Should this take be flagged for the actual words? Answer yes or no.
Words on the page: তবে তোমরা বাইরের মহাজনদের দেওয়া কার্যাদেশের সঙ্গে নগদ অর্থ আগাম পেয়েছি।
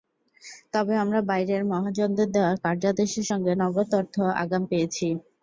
yes